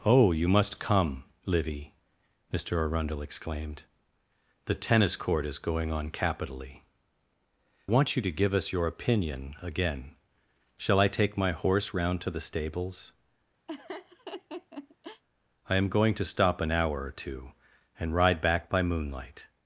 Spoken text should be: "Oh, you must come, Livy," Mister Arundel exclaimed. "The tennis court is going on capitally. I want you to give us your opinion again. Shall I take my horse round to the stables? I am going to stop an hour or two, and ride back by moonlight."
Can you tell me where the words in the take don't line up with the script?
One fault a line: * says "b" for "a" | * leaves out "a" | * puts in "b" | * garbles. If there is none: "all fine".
* leaves out "I"